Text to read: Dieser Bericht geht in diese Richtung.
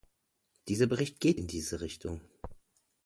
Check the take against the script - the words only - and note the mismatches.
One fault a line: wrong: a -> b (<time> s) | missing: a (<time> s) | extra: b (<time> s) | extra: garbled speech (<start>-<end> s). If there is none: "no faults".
no faults